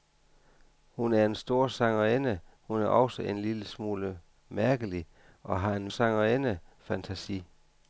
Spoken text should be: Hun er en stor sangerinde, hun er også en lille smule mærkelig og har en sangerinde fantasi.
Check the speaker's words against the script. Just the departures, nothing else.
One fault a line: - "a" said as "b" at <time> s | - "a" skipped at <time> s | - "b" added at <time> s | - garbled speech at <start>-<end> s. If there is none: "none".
none